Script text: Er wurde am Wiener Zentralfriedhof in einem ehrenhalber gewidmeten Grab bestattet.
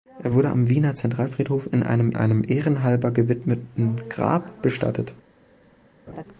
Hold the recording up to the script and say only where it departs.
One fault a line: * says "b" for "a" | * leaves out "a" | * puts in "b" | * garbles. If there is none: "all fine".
* puts in "einem"